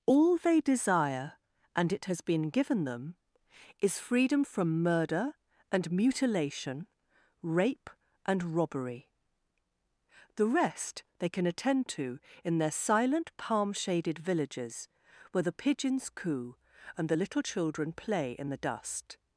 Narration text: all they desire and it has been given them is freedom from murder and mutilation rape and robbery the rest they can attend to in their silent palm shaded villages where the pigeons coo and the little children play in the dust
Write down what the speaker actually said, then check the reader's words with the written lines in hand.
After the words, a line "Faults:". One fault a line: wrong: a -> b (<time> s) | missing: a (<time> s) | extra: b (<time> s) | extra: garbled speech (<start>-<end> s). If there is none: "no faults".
all they desire and it has been given them is freedom from murder and mutilation rape and robbery the rest they can attend to in their silent palm shaded villages where the pigeons coo and the little children play in the dust
Faults:
no faults